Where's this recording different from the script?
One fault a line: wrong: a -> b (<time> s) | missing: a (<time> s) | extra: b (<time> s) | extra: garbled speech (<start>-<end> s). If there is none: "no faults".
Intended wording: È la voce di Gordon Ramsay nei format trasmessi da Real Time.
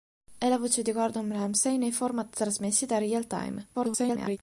extra: garbled speech (3.7-4.4 s)